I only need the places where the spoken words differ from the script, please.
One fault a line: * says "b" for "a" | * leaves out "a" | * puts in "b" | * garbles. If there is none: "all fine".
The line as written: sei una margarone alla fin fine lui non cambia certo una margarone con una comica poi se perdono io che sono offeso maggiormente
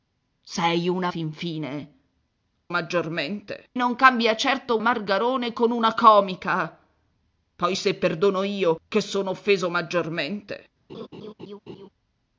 * leaves out "margarone alla"
* says "maggiormente" for "lui"
* leaves out "una"